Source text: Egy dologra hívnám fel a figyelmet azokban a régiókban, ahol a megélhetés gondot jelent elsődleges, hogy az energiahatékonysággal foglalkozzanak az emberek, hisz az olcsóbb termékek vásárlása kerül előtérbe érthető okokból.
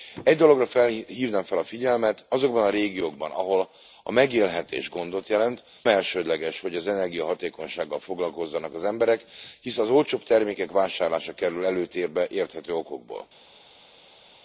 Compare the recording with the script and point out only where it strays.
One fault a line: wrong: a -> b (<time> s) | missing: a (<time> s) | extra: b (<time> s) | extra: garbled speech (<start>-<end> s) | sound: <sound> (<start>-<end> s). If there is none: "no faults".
no faults